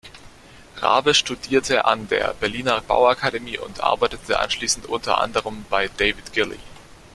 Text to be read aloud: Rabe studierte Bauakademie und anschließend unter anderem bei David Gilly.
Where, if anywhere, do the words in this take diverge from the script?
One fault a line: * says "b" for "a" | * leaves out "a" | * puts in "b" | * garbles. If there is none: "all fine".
* puts in "an der Berliner"
* puts in "arbeitete"